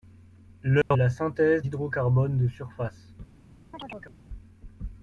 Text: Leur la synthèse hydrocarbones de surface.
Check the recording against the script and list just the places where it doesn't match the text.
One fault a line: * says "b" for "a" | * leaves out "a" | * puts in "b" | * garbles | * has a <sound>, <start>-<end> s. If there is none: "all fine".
* has a dropout, 0.8-0.9 s
* has a chirp, 3.7-4.2 s